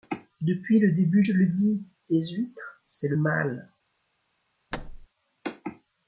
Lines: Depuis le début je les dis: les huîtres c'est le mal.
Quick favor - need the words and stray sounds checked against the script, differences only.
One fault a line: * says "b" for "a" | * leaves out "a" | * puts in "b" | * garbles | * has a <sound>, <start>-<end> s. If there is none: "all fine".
* says "le" for "les"
* has a thud, 4.7-5.1 s